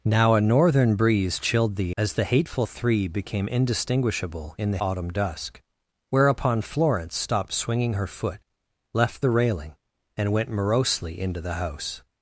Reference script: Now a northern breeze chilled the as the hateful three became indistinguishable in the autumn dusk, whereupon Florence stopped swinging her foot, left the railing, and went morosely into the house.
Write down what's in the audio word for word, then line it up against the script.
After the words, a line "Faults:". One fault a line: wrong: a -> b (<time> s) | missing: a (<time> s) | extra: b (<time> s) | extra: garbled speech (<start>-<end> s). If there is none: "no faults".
Now a northern breeze chilled the as the hateful three became indistinguishable in the autumn dusk, whereupon Florence stopped swinging her foot, left the railing, and went morosely into the house.
Faults:
no faults